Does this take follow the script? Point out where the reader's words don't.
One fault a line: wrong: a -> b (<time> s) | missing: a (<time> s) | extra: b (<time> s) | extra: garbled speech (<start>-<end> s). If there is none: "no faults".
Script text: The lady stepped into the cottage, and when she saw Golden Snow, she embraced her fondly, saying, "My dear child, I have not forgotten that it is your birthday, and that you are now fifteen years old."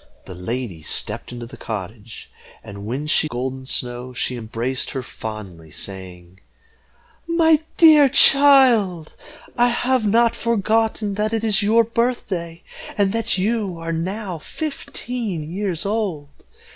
missing: saw (3.3 s)